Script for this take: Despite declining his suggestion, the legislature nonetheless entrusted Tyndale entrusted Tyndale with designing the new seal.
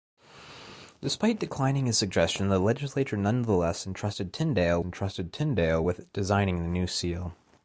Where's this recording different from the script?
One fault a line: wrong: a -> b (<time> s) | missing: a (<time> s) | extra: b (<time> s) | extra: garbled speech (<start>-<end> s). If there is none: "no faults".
no faults